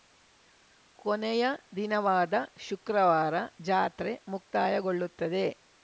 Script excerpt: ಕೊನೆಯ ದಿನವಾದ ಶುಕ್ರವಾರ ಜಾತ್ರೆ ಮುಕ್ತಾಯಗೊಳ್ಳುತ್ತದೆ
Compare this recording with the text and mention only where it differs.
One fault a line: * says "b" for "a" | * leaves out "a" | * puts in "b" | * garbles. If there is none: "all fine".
all fine